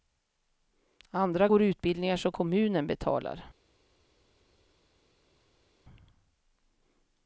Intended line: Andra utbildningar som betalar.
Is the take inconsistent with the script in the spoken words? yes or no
yes